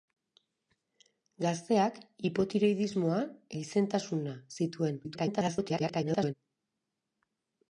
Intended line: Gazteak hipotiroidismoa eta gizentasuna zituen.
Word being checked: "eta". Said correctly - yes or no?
no